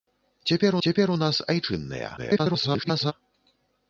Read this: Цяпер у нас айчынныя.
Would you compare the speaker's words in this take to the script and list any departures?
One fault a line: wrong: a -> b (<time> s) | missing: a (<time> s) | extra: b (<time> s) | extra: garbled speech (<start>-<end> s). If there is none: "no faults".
extra: цяпер (0.9 s)
extra: garbled speech (2.2-3.1 s)